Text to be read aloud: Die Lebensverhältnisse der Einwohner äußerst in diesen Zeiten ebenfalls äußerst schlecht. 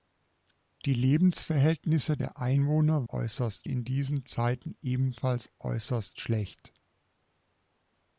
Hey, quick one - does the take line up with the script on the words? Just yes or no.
yes